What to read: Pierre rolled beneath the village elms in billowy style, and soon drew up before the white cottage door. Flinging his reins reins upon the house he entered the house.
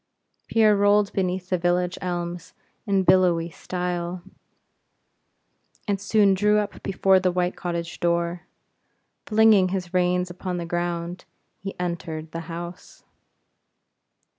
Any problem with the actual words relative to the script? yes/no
yes